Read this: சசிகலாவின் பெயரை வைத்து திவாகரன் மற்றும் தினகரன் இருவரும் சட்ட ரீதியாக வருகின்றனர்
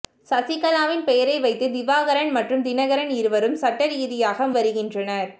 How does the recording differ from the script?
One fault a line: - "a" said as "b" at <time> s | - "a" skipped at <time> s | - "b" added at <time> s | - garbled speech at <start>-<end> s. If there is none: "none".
none